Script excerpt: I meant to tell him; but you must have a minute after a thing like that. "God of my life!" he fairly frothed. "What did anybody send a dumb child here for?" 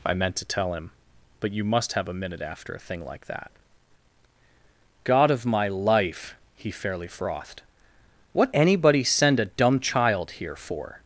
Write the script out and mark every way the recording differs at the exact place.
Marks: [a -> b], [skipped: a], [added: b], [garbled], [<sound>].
I meant to tell him; but you must have a minute after a thing like that. "God of my life!" he fairly frothed. "What [skipped: did] anybody send a dumb child here for?"